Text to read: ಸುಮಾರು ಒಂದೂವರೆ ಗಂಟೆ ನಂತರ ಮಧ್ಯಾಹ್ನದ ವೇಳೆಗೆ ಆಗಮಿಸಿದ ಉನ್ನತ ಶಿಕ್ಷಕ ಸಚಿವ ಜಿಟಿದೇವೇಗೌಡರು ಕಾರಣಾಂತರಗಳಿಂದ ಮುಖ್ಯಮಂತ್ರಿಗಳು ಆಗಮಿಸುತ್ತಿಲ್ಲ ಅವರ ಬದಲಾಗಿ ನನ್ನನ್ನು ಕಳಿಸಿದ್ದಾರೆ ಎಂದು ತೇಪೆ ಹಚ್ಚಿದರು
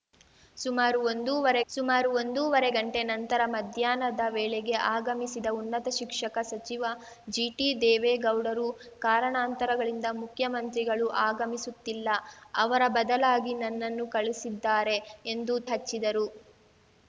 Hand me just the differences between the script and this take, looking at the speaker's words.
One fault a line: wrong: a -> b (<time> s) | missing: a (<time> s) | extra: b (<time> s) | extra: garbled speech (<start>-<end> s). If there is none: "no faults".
extra: ಸುಮಾರು ಒಂದೂವರೆ (1.7 s)
missing: ತೇಪೆ (15.6 s)